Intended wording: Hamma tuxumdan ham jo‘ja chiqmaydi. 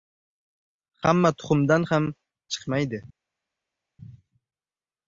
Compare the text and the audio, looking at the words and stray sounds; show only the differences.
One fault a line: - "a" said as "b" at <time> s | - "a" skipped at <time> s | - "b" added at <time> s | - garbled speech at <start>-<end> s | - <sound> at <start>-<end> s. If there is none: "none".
- "jo‘ja" skipped at 2.1 s